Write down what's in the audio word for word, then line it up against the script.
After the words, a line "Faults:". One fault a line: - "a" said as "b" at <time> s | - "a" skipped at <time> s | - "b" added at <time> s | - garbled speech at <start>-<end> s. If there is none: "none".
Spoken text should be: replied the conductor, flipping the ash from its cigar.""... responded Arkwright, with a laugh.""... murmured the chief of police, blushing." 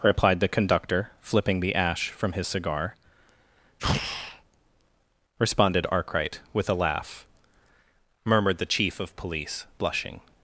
replied the conductor, flipping the ash from his cigar.""... responded Arkwright, with a laugh.""... murmured the chief of police, blushing."
Faults:
- "its" said as "his" at 2.3 s